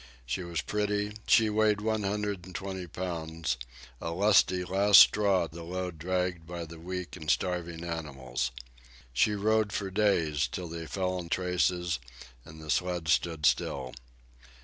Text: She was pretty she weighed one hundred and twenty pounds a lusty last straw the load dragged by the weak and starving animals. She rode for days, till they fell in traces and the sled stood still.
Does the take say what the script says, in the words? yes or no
yes